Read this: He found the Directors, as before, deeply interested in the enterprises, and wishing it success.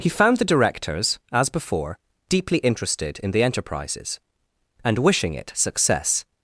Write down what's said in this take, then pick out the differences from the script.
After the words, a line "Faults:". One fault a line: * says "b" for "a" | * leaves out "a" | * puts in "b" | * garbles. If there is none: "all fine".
He found the Directors, as before, deeply interested in the enterprises, and wishing it success.
Faults:
all fine